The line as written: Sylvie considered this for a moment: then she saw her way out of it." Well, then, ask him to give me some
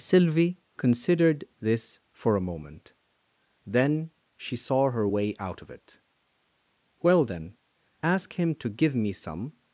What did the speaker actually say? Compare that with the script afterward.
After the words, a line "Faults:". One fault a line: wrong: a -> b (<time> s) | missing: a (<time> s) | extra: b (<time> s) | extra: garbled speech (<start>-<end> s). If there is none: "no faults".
Sylvie considered this for a moment: then she saw her way out of it." Well, then, ask him to give me some
Faults:
no faults